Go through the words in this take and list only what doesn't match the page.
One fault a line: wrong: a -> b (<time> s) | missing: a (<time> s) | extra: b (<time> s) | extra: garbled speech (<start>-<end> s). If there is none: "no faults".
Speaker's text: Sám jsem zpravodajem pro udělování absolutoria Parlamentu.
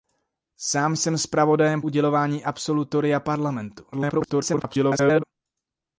missing: pro (1.8 s)
extra: garbled speech (3.9-5.2 s)